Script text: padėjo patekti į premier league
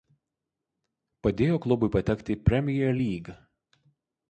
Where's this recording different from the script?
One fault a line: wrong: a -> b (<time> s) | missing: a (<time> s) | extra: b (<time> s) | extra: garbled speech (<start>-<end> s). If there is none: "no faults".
extra: klubui (1.6 s)